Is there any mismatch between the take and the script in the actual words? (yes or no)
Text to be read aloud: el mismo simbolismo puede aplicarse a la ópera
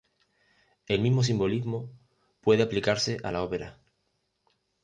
no